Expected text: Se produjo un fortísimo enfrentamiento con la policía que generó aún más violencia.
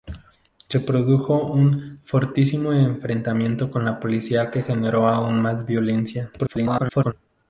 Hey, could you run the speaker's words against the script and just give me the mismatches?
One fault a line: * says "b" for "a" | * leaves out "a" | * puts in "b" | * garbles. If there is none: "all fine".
* garbles